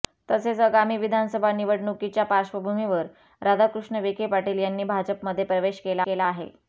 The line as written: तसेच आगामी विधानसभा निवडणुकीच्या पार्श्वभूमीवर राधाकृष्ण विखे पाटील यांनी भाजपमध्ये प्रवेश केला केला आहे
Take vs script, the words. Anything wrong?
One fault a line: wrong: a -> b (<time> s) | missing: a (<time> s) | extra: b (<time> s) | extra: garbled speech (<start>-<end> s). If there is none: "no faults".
no faults